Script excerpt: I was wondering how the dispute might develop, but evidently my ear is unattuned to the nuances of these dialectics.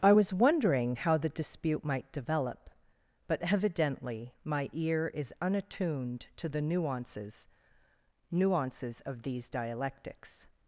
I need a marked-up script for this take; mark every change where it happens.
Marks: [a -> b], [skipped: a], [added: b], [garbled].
I was wondering how the dispute might develop, but evidently my ear is unattuned to the nuances [added: nuances] of these dialectics.